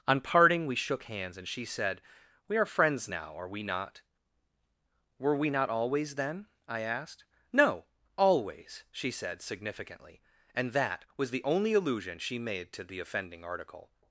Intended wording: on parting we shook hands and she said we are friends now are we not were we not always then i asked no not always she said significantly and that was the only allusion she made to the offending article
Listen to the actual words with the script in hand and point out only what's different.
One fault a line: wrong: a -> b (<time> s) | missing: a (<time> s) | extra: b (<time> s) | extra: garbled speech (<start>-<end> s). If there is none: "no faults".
missing: not (7.8 s)